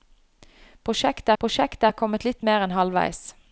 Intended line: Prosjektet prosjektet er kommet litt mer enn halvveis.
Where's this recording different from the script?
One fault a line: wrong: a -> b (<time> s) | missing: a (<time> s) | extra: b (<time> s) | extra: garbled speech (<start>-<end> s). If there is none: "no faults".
no faults